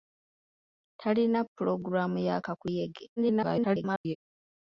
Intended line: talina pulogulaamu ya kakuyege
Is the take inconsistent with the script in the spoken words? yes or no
yes